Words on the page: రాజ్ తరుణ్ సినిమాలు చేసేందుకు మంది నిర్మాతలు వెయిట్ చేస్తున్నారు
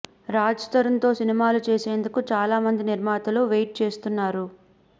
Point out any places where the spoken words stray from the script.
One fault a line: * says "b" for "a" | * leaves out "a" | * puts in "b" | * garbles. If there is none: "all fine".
* puts in "తో"
* puts in "చాలా"